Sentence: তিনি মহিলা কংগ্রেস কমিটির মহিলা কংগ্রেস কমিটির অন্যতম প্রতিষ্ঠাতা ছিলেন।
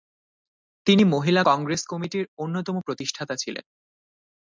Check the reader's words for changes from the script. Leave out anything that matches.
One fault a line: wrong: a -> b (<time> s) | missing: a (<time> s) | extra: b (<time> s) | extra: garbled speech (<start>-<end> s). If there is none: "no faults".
missing: মহিলা কংগ্রেস কমিটির (2.2 s)